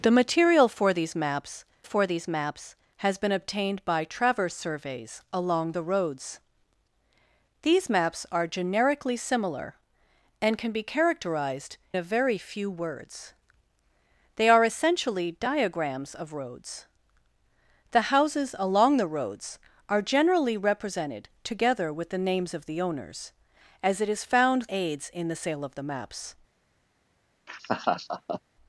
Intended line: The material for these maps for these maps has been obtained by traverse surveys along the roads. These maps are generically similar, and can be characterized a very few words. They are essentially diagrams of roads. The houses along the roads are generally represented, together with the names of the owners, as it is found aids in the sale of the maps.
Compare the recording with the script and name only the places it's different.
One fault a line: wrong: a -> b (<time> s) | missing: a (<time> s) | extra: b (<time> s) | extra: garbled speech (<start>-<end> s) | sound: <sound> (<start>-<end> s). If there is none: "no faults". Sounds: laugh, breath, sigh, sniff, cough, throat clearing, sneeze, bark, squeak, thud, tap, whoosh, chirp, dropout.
sound: laugh (27.5-28.4 s)